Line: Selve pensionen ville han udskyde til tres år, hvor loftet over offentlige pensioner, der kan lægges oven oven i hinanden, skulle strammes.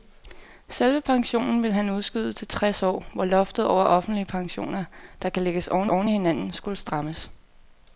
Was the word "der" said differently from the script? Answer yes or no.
no